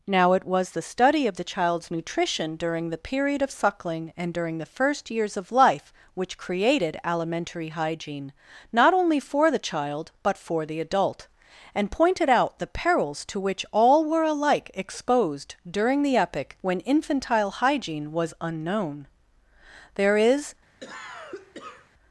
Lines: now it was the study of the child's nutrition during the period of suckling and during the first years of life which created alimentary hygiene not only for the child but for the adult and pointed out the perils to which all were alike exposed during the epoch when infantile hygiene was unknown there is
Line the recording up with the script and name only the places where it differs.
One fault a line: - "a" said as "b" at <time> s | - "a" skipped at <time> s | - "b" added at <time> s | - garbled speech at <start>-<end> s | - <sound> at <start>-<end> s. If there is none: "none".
- cough at 20.8-21.9 s